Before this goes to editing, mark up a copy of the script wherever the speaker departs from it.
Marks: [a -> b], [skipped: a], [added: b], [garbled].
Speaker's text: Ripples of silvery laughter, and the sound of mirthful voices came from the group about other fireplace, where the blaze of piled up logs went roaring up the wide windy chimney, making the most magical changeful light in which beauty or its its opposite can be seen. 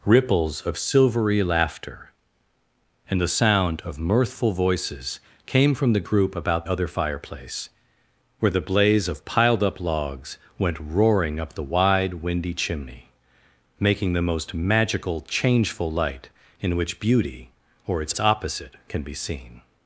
Ripples of silvery laughter, and the sound of mirthful voices came from the group about other fireplace, where the blaze of piled up logs went roaring up the wide windy chimney, making the most magical changeful light in which beauty or its its opposite can be seen.